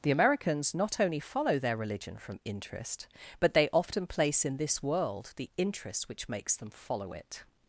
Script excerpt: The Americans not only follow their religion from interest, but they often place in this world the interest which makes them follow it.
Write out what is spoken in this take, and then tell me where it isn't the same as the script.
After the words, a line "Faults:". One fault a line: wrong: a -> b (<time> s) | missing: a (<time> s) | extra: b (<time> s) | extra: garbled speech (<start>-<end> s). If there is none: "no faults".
The Americans not only follow their religion from interest, but they often place in this world the interest which makes them follow it.
Faults:
no faults